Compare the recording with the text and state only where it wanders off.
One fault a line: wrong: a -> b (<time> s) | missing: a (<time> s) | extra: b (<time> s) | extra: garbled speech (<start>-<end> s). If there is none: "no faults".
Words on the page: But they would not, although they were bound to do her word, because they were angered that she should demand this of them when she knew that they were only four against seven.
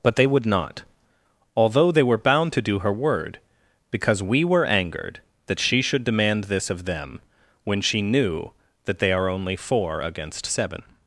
wrong: they -> we (4.2 s)
wrong: were -> are (9.1 s)